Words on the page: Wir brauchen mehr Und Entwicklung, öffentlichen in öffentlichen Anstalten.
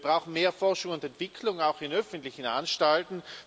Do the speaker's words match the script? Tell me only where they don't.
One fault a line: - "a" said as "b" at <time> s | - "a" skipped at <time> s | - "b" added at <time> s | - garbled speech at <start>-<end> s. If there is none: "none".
- "Forschung" added at 0.5 s
- "öffentlichen" said as "auch" at 1.6 s